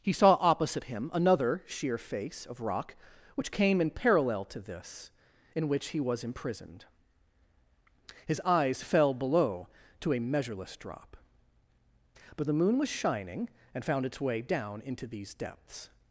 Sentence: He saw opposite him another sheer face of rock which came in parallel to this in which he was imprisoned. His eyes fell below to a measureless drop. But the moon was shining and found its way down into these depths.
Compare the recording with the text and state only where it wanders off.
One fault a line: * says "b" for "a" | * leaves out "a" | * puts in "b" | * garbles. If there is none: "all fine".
all fine